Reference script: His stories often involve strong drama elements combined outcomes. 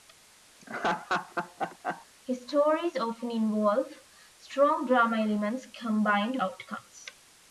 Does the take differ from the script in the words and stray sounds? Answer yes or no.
yes